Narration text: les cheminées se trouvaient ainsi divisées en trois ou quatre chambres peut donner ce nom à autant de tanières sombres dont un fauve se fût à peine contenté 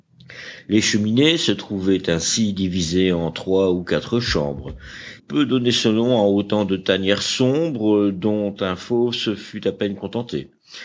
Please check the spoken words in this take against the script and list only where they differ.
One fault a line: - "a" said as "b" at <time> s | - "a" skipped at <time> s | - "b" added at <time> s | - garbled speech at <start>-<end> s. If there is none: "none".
none